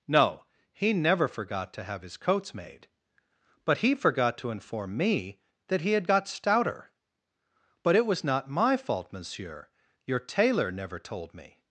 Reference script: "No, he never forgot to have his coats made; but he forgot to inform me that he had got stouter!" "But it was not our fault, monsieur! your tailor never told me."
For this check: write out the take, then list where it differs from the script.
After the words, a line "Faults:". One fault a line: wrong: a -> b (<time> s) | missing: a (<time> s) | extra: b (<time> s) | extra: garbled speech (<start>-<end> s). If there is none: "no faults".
"No, he never forgot to have his coats made; but he forgot to inform me that he had got stouter!" "But it was not my fault, monsieur! your tailor never told me."
Faults:
wrong: our -> my (8.5 s)